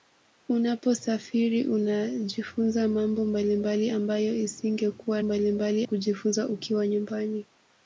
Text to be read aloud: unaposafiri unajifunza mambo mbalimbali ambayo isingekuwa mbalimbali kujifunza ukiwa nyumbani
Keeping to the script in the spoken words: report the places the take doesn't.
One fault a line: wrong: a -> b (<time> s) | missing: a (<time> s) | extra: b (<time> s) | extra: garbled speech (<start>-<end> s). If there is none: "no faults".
no faults